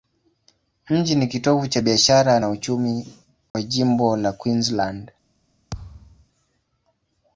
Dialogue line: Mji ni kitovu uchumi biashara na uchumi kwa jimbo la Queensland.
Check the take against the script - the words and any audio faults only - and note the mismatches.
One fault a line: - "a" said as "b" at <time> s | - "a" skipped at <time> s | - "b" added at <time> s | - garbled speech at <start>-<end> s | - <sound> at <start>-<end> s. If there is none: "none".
- "uchumi" said as "cha" at 1.7 s
- dropout at 3.5-3.5 s
- thud at 5.7-6.3 s